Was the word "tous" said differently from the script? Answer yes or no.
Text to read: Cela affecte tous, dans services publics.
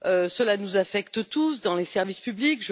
no